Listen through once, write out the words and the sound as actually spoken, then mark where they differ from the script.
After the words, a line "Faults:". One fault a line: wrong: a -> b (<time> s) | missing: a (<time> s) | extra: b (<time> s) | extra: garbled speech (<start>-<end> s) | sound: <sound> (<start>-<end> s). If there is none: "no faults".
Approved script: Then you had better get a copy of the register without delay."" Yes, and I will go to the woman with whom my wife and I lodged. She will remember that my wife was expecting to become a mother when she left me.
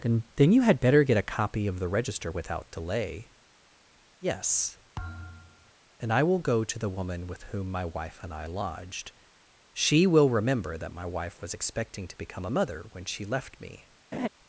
Then then you had better get a copy of the register without delay."" Yes, and I will go to the woman with whom my wife and I lodged. She will remember that my wife was expecting to become a mother when she left me.
Faults:
extra: then (0.3 s)
sound: thud (5.0-5.7 s)
sound: laugh (14.1-14.3 s)